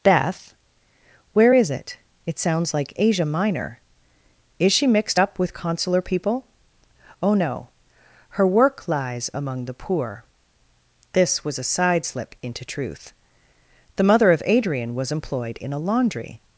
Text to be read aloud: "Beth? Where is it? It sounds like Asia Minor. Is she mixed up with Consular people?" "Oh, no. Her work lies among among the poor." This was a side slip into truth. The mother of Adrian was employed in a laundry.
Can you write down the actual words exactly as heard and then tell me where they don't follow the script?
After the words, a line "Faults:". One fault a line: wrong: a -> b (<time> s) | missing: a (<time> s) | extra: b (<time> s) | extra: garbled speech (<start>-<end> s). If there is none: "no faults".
"Beth? Where is it? It sounds like Asia Minor. Is she mixed up with Consular people?" "Oh, no. Her work lies among the poor." This was a side slip into truth. The mother of Adrian was employed in a laundry.
Faults:
missing: among (9.6 s)